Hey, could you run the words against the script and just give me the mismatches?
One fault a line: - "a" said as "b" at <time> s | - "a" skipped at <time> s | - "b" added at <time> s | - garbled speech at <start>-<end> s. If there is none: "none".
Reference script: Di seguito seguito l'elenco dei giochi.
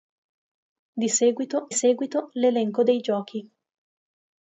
none